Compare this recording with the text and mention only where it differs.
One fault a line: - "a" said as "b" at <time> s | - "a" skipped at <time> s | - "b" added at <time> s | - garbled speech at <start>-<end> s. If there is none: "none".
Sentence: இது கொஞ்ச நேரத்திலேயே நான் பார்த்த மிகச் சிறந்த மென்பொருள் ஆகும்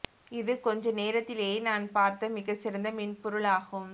none